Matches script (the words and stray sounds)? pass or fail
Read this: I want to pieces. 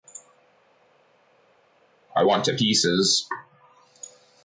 pass